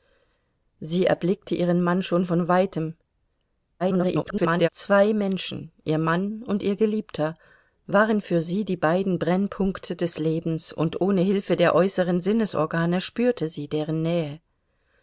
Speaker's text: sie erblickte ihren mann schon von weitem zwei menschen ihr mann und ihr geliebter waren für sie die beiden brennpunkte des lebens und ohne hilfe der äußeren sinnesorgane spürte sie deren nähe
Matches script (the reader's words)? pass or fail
fail